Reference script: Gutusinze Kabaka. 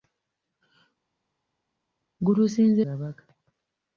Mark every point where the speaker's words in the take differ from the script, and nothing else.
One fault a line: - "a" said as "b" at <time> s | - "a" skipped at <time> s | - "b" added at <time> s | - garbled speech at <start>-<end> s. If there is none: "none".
none